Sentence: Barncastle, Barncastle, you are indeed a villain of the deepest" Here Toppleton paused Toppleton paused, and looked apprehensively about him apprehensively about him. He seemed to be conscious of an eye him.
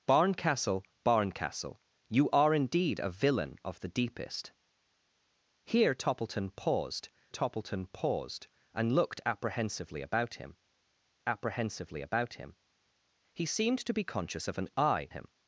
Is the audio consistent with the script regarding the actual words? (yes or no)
yes